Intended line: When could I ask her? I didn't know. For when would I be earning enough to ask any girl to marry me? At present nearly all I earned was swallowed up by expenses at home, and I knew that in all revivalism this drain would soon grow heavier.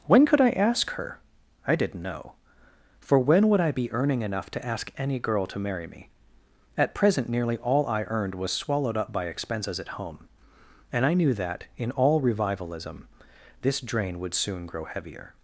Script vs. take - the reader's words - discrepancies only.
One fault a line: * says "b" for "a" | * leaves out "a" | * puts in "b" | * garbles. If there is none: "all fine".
all fine